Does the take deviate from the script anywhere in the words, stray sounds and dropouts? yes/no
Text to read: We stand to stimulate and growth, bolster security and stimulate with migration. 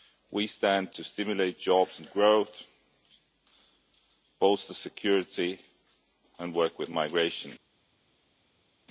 yes